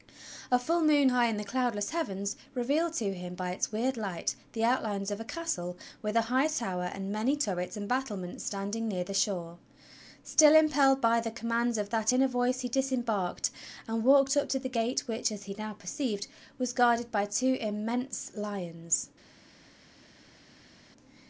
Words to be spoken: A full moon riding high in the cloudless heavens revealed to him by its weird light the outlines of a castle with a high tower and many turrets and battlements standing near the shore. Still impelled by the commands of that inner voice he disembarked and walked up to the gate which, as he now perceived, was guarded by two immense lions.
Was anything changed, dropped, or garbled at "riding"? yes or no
yes